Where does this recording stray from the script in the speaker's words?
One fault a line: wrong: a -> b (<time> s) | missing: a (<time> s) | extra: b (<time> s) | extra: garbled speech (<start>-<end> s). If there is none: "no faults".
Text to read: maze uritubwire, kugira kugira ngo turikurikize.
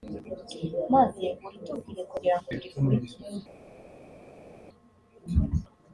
missing: kugira (2.4 s)